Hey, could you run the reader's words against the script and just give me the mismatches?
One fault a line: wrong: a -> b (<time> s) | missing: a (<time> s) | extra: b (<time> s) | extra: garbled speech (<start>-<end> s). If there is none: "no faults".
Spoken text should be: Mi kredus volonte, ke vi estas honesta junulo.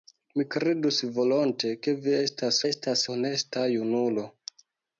extra: estas (2.7 s)